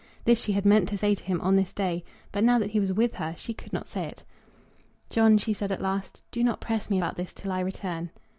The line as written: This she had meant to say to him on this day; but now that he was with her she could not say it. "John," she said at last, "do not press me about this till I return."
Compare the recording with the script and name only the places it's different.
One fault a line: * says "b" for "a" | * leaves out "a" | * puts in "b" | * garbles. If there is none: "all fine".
all fine